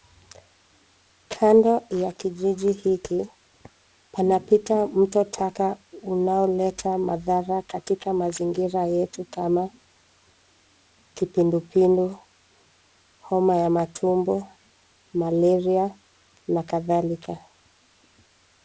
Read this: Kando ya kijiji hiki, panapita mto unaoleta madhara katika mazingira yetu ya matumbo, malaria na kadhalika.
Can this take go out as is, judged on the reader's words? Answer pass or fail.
fail